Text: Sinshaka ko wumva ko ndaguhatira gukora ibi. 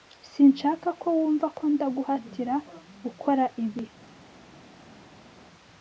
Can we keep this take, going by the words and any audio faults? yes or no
yes